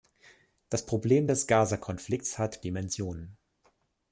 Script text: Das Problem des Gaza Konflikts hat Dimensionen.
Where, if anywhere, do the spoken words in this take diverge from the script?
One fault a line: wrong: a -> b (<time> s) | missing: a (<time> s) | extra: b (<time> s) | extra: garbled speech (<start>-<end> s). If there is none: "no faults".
no faults